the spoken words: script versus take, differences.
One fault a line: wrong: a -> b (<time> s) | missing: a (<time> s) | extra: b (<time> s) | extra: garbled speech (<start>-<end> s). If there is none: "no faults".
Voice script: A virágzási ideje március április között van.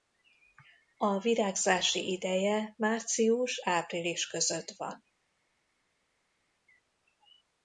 no faults